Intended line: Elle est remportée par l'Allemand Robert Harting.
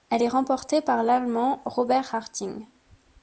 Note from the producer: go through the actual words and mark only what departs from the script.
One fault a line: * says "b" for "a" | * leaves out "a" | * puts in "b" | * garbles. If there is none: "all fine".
all fine